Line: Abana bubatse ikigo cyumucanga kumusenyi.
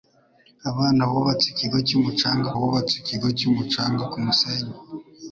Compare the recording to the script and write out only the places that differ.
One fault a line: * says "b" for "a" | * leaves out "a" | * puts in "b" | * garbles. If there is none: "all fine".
* puts in "bubatse ikigo cyumucanga"